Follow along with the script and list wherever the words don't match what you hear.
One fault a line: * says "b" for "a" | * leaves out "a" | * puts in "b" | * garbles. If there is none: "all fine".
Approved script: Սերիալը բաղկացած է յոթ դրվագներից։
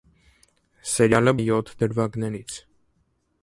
* leaves out "բաղկացած"